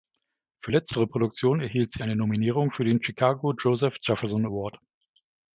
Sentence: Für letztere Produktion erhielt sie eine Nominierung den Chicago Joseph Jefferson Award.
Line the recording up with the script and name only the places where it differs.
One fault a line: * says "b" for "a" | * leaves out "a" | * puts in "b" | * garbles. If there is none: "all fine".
* puts in "für"